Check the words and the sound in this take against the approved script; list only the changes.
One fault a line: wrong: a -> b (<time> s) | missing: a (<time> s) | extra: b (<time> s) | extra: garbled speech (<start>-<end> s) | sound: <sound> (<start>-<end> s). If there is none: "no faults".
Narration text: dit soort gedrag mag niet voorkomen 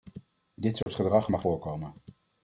sound: dropout (0.8-0.9 s)
missing: niet (1.4 s)